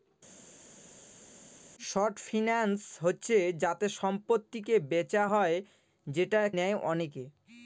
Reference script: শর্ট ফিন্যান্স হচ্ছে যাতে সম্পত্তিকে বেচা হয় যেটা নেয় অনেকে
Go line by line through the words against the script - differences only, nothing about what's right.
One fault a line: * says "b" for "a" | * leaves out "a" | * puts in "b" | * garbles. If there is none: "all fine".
all fine